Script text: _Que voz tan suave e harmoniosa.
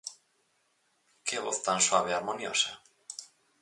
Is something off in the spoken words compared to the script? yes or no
no